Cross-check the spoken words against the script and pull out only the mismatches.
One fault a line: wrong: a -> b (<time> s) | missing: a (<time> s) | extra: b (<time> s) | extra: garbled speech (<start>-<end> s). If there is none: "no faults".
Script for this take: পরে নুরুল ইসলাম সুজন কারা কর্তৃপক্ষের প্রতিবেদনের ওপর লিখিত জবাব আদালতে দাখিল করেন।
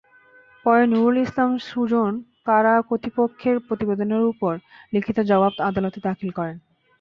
no faults